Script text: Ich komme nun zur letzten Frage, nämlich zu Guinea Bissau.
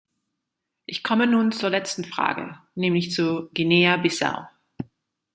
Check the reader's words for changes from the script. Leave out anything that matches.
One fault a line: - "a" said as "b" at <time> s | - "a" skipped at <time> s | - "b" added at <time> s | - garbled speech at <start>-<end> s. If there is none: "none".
none